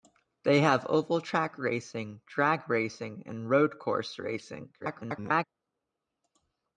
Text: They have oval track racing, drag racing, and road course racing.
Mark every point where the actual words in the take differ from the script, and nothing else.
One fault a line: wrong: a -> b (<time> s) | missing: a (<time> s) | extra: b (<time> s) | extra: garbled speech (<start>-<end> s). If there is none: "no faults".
extra: garbled speech (4.8-5.4 s)